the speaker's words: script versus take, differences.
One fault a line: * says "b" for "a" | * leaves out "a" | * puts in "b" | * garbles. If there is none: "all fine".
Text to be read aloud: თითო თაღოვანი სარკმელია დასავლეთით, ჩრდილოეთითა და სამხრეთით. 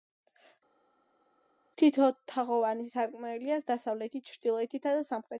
all fine